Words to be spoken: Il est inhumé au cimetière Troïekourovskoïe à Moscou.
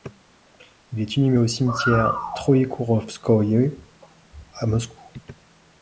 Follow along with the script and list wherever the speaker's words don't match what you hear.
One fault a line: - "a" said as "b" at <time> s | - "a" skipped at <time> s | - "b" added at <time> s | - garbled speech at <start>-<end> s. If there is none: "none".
none